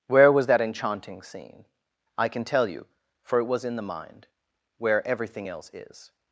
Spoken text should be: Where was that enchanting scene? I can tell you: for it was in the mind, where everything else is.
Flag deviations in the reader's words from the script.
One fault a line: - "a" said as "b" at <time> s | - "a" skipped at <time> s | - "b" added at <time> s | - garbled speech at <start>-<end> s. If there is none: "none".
none